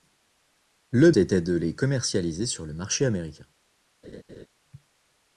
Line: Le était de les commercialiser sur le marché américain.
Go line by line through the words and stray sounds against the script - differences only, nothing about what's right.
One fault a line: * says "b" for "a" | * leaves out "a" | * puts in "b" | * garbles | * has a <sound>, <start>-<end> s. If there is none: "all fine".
* has a laugh, 4.0-4.5 s